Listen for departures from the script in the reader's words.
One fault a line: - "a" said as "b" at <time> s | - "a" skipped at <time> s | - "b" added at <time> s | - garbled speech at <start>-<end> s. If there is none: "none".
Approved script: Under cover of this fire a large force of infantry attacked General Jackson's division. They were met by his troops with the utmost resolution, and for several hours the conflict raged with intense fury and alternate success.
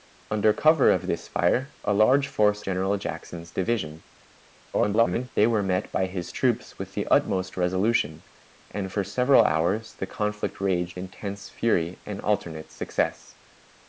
- "of infantry attacked" skipped at 2.6 s
- garbled speech at 4.7-5.3 s
- "with" skipped at 11.0 s